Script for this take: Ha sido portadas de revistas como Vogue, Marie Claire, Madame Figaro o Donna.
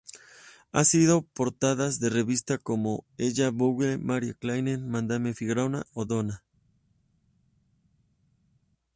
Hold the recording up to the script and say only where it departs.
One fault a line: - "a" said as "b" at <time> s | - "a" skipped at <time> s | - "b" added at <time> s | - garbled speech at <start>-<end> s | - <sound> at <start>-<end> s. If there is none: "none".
- "Elle" added at 3.2 s